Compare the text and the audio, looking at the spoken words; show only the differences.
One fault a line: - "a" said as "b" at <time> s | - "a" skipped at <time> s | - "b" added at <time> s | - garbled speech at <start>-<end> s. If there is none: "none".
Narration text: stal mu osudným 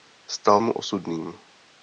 none